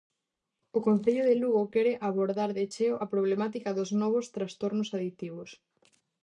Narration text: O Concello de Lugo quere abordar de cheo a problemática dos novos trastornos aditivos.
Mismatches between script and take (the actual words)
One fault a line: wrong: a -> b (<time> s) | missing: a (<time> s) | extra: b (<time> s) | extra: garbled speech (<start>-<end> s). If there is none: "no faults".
no faults